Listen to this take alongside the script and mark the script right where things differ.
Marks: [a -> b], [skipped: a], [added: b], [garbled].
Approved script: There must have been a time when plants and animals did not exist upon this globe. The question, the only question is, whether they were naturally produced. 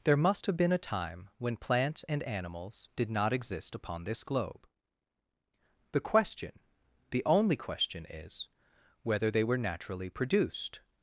There must have been a time when plants and animals did not exist upon this globe. The question, the only question is, whether they were naturally produced.